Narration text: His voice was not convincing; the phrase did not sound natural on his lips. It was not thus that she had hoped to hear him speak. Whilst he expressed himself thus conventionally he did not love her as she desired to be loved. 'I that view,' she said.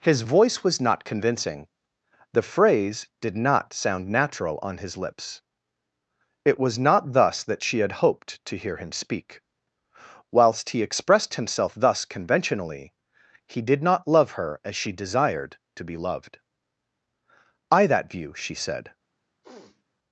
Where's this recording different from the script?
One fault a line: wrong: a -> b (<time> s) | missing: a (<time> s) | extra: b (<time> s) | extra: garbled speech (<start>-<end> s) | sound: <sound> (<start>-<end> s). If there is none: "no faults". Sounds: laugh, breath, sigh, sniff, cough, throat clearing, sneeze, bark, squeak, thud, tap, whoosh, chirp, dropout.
sound: sniff (19.4-19.8 s)